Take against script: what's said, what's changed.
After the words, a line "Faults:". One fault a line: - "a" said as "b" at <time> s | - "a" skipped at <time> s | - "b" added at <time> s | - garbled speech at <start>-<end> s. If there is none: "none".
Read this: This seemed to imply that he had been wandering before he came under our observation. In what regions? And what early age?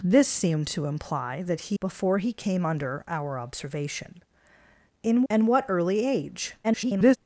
This seemed to imply that he before he came under our observation. In? And what early age? [garbled]
Faults:
- "had been wandering" skipped at 1.8 s
- "what regions" skipped at 5.2 s
- garbled speech at 6.6-7.2 s